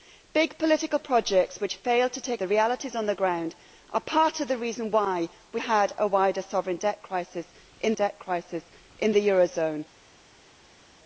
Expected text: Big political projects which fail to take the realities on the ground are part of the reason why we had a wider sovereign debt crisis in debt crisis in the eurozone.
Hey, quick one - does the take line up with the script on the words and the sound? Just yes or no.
yes